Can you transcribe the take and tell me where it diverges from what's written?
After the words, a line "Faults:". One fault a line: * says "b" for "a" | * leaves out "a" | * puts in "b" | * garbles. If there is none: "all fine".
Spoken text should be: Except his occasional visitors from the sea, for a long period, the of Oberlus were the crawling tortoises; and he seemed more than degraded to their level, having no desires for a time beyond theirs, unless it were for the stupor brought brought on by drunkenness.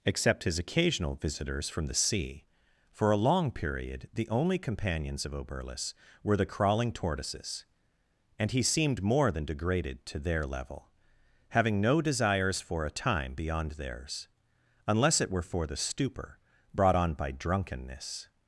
Except his occasional visitors from the sea, for a long period, the only companions of Oberlus were the crawling tortoises; and he seemed more than degraded to their level, having no desires for a time beyond theirs, unless it were for the stupor brought on by drunkenness.
Faults:
* puts in "only companions"
* leaves out "brought"